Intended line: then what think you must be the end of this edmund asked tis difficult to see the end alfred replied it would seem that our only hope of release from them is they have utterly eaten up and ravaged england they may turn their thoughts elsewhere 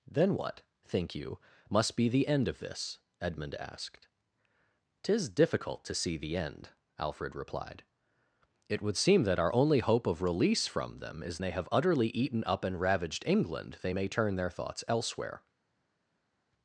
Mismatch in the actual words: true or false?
false